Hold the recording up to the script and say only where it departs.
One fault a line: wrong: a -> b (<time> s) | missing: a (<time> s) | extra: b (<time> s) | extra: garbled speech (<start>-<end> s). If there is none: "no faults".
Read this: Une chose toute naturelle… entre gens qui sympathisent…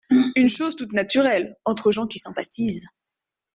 no faults